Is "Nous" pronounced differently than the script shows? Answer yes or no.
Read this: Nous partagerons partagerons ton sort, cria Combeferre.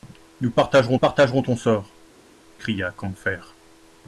no